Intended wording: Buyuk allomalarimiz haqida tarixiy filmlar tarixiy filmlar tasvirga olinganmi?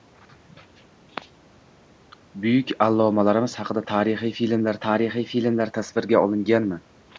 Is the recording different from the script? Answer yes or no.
no